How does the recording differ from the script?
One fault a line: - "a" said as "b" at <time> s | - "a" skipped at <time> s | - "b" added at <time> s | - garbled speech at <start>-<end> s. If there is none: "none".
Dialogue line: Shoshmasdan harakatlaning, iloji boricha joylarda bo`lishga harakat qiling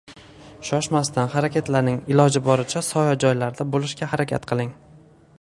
- "soya" added at 2.9 s